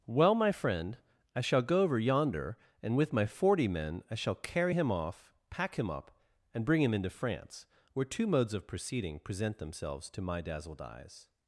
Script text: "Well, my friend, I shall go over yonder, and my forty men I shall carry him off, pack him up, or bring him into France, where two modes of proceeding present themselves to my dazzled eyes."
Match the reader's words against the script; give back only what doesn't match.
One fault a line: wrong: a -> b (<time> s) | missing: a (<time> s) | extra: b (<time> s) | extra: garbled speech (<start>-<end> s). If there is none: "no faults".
extra: with (3.0 s)
wrong: or -> and (6.5 s)